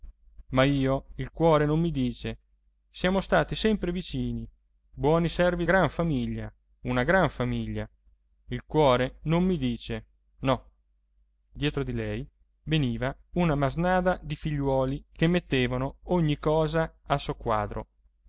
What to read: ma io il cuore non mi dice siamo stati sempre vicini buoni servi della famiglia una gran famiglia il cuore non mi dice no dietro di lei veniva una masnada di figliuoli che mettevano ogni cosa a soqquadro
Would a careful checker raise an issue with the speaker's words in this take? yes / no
yes